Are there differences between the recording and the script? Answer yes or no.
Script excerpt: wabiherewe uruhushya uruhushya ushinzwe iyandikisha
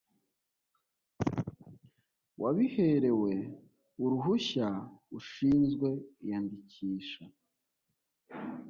yes